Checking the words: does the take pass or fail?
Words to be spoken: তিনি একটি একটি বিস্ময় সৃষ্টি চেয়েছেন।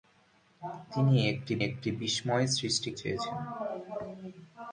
pass